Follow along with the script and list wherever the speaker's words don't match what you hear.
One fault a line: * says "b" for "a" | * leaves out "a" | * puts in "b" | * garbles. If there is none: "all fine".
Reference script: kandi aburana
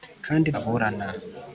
all fine